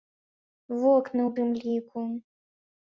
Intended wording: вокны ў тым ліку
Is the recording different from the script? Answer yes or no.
no